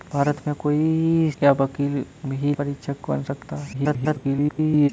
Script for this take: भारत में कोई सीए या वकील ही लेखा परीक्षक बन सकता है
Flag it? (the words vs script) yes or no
yes